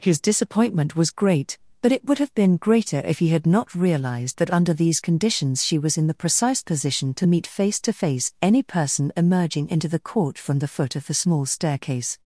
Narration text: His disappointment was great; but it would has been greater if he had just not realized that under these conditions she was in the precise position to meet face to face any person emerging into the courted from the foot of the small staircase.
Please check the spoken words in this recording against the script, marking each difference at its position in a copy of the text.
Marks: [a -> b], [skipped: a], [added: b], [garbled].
His disappointment was great; but it would [has -> have] been greater if he had [skipped: just] not realized that under these conditions she was in the precise position to meet face to face any person emerging into the [courted -> court] from the foot of the small staircase.